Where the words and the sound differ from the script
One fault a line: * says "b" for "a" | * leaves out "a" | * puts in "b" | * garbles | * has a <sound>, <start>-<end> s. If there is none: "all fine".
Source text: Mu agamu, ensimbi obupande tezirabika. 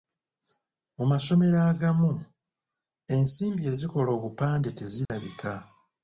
* puts in "masomero"
* puts in "ezikola"
* has a dropout, 5.1-5.1 s